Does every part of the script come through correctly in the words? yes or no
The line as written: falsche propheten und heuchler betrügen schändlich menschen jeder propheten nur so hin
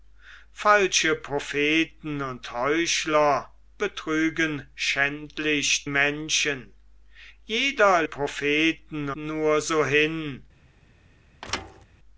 yes